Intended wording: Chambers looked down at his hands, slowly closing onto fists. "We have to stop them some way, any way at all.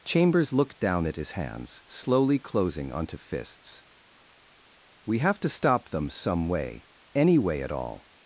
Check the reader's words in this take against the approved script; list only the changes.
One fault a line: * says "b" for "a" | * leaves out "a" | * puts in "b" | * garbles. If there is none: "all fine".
all fine